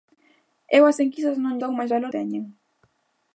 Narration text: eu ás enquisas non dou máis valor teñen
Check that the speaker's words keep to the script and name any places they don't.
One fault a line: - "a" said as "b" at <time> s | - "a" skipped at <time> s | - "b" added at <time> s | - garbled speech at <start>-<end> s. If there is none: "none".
none